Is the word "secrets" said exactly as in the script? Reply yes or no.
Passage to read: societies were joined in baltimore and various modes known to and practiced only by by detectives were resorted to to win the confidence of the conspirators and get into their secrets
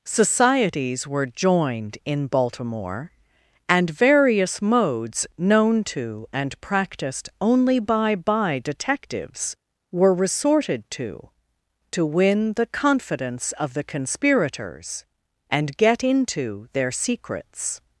yes